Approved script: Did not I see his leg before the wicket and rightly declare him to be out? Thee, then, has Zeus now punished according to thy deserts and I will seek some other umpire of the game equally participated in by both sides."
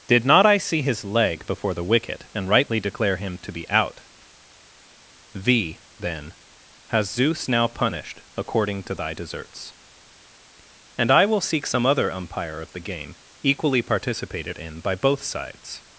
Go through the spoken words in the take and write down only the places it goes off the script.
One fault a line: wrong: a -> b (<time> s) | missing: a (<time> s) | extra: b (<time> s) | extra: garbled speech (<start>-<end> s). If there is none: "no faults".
no faults